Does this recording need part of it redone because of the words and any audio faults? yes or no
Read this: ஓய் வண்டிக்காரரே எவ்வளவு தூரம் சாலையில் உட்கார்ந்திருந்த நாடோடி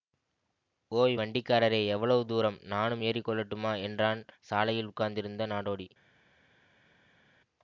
yes